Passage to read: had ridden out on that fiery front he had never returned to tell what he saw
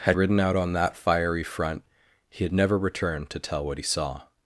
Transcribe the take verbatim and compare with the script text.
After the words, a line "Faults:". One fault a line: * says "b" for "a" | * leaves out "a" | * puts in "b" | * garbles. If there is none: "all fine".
had ridden out on that fiery front he had never returned to tell what he saw
Faults:
all fine